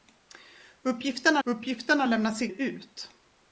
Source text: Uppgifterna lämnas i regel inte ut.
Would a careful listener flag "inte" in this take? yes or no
yes